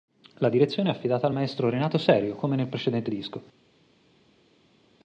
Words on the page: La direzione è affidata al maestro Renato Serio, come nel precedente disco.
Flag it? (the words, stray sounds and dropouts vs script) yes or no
no